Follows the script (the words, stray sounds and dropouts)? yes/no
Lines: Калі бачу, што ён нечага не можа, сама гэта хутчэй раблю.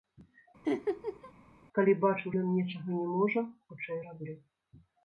no